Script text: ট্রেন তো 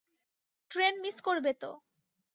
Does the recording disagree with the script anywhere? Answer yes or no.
yes